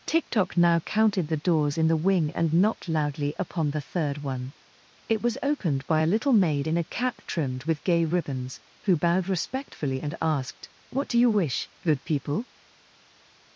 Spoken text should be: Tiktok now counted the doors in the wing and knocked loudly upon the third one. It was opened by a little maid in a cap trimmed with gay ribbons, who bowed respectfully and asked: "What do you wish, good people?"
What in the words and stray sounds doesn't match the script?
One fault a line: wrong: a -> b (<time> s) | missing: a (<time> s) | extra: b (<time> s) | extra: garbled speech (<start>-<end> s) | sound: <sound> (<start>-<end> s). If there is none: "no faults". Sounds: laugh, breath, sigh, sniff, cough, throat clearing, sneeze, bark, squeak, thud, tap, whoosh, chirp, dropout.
no faults